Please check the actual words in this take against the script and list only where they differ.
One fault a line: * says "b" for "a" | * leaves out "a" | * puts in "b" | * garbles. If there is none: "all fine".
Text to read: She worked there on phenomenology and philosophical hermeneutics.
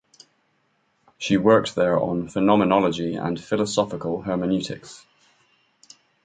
all fine